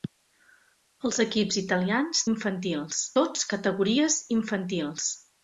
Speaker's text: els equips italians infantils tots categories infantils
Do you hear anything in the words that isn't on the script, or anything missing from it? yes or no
no